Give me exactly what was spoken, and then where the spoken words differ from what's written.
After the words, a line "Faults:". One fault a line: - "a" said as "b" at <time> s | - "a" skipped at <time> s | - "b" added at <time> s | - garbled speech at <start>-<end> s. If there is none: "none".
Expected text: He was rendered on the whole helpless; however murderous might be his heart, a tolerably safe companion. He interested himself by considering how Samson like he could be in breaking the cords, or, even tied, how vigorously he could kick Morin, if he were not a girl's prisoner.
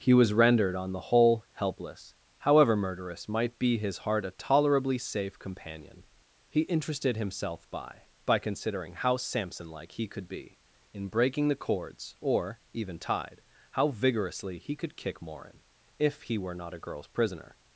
He was rendered on the whole helpless; however murderous might be his heart, a tolerably safe companion. He interested himself by by considering how Samson like he could be in breaking the cords, or, even tied, how vigorously he could kick Morin, if he were not a girl's prisoner.
Faults:
- "by" added at 8.2 s